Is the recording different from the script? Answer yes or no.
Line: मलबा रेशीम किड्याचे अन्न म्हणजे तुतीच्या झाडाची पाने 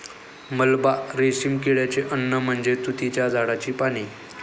no